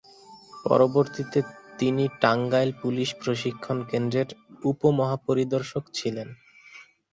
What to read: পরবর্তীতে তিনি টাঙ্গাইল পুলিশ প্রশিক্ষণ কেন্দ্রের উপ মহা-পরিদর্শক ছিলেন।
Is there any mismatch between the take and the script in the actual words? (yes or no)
no